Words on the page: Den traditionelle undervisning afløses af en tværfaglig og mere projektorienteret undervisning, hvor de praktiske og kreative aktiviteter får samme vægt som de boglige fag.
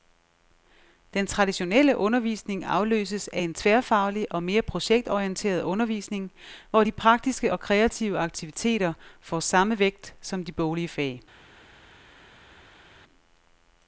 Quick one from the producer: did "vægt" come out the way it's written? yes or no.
yes